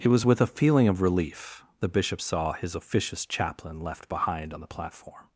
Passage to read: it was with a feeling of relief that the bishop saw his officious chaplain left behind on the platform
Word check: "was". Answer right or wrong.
right